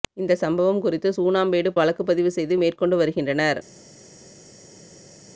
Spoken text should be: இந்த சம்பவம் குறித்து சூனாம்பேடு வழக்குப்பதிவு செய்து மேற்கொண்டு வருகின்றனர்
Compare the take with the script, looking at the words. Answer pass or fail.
pass